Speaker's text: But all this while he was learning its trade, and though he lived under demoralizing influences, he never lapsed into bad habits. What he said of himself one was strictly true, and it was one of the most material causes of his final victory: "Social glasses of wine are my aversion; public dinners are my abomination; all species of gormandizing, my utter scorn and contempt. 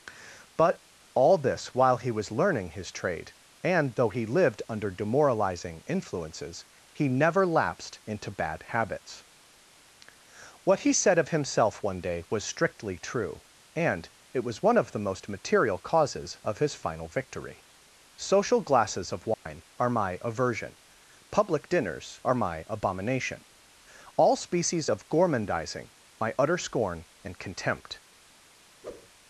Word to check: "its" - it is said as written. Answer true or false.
false